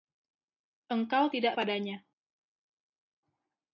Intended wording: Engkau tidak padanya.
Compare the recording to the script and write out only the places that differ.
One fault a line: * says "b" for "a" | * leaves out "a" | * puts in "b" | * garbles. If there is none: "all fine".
all fine